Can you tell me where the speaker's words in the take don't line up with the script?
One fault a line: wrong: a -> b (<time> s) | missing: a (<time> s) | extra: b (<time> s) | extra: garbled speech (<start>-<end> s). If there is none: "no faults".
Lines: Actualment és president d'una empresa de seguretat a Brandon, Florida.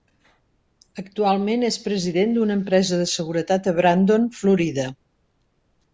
no faults